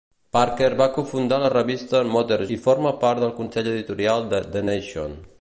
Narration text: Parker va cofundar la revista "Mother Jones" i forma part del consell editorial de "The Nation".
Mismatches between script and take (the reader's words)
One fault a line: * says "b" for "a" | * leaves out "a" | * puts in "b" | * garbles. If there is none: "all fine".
* leaves out "Jones"